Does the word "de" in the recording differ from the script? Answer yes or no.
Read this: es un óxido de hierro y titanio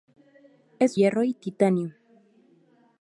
yes